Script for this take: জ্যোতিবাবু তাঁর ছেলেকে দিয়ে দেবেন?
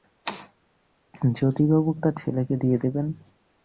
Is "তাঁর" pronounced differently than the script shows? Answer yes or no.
no